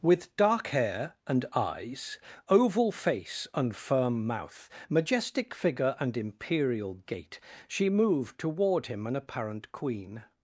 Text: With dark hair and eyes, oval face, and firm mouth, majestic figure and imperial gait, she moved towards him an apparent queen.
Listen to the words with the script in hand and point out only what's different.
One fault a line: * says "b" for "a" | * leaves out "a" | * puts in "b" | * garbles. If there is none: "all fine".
* says "toward" for "towards"